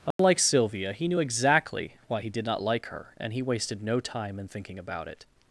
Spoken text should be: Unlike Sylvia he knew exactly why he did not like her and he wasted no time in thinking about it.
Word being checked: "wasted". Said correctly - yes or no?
yes